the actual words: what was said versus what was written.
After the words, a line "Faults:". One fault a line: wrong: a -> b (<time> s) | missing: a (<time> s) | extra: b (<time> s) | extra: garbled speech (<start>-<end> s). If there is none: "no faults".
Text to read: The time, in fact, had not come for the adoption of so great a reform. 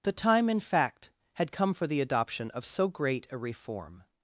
The time, in fact, had come for the adoption of so great a reform.
Faults:
missing: not (1.5 s)